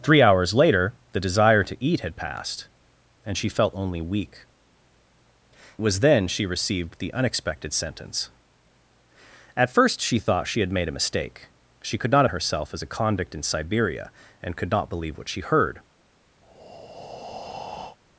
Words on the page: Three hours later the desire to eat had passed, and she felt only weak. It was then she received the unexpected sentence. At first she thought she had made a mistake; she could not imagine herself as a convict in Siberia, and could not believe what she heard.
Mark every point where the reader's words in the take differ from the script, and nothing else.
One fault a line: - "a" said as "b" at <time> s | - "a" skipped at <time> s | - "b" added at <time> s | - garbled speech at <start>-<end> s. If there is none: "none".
- "It" skipped at 4.5 s
- "imagine" skipped at 12.2 s